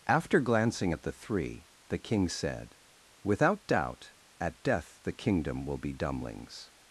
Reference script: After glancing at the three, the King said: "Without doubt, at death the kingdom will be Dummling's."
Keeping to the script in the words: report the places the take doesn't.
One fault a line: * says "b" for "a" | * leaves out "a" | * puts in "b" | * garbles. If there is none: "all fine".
all fine